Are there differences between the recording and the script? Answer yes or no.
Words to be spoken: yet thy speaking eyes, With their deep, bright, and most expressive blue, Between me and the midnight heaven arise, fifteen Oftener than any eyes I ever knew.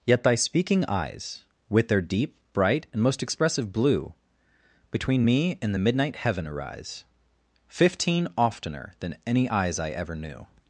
no